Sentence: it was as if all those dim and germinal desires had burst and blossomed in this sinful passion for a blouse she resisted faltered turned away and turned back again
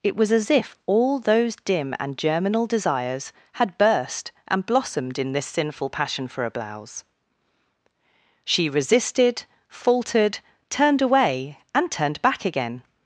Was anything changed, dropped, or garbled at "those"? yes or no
no